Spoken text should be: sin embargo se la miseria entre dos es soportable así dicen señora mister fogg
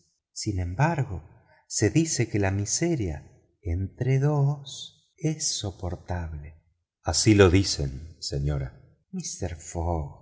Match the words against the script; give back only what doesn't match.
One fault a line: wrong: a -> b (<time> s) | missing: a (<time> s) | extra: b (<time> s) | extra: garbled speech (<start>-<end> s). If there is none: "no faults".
extra: dice que (1.9 s)
extra: lo (7.3 s)